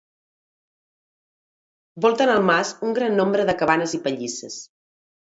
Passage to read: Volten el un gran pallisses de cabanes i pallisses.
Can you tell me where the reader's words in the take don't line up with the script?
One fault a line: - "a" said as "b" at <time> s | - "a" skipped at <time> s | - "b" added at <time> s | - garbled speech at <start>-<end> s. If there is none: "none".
- "mas" added at 2.5 s
- "pallisses" said as "nombre" at 3.2 s